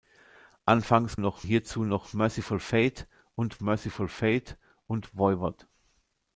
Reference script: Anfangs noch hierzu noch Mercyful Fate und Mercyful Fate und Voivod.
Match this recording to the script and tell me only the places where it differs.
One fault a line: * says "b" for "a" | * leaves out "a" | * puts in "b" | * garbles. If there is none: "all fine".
all fine